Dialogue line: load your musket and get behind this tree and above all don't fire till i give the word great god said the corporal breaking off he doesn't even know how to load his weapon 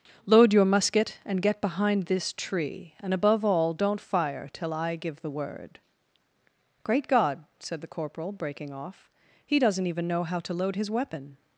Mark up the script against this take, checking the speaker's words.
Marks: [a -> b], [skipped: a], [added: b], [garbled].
load your musket and get behind this tree and above all don't fire till i give the word great god said the corporal breaking off he doesn't even know how to load his weapon